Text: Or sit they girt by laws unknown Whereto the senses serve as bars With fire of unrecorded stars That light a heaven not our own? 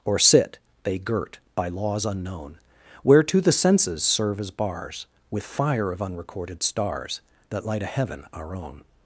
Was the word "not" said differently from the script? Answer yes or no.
yes